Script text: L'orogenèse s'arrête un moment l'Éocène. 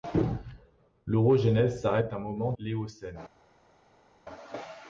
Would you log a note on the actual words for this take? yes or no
no